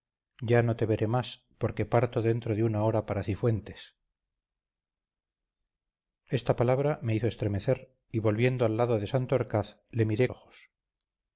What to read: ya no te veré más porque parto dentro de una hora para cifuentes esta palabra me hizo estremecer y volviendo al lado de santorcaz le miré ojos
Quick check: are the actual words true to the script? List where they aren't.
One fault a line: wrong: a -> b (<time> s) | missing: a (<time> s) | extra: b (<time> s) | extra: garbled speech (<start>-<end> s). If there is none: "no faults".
no faults